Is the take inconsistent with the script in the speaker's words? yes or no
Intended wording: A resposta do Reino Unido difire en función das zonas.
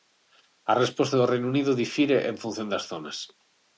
no